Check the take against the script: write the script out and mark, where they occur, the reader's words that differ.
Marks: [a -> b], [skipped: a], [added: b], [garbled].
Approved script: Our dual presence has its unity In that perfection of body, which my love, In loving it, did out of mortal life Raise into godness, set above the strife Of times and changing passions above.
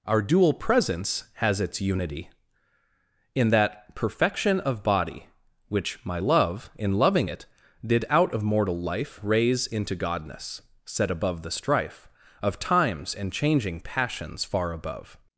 Our dual presence has its unity In that perfection of body, which my love, In loving it, did out of mortal life Raise into godness, set above the strife Of times and changing passions [added: far] above.